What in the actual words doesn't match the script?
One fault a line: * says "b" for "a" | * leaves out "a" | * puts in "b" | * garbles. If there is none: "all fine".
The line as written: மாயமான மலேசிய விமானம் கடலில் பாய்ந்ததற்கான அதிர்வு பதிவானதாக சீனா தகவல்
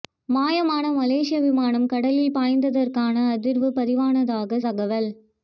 * leaves out "சீனா"